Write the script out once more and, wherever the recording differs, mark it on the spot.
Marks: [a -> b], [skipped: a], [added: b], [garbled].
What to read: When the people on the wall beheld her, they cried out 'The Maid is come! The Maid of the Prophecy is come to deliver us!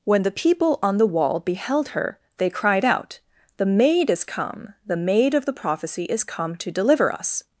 When the people on the wall beheld her, they cried out 'The Maid is come! The Maid of the Prophecy is come to deliver us!